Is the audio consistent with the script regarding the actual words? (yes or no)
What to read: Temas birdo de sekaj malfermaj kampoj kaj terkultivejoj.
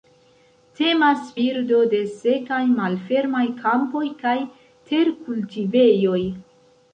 yes